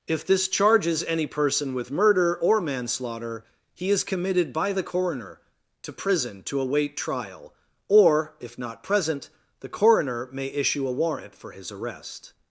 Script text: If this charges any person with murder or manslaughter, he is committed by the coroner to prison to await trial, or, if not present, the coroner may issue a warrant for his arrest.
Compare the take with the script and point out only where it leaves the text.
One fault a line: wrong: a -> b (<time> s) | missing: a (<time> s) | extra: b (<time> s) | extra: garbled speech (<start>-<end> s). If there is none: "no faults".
no faults